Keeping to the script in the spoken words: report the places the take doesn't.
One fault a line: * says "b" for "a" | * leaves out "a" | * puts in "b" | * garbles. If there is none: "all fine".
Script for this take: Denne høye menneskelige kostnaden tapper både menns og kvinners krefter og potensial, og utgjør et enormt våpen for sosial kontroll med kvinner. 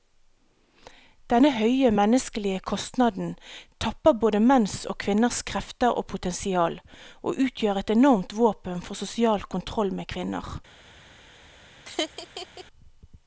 all fine